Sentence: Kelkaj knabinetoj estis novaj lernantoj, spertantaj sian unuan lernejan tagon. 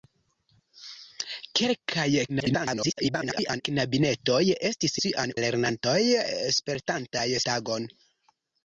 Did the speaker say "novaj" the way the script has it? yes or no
no